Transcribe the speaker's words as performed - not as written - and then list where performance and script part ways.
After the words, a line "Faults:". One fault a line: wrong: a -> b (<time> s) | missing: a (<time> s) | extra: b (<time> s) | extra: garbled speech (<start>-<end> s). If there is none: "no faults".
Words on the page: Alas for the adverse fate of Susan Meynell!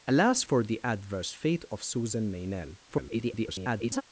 Alas for the adverse fate of Susan Meynell! [garbled]
Faults:
extra: garbled speech (2.9-4.0 s)